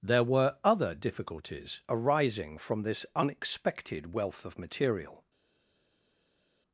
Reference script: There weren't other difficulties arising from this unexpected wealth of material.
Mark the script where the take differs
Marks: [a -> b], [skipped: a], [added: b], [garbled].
There [weren't -> were] other difficulties arising from this unexpected wealth of material.